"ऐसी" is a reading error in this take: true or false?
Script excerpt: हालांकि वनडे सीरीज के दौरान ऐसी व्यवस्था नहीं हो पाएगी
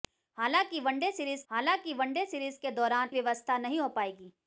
true